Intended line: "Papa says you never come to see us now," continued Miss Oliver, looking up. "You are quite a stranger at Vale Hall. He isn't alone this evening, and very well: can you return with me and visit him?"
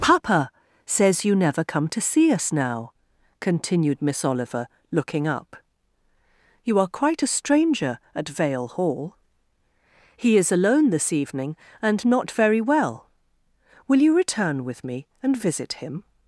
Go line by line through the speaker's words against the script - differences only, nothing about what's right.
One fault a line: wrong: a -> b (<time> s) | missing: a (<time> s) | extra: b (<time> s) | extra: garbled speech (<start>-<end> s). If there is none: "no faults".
wrong: isn't -> is (10.4 s)
extra: not (12.0 s)
wrong: can -> will (13.9 s)